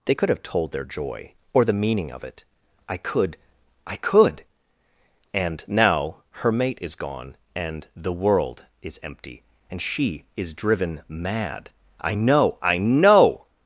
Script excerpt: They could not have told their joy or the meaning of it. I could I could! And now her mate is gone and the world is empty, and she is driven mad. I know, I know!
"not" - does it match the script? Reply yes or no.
no